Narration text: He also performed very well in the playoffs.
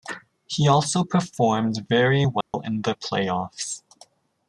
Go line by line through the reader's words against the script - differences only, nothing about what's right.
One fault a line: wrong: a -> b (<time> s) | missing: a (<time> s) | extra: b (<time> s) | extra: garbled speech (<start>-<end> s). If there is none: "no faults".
no faults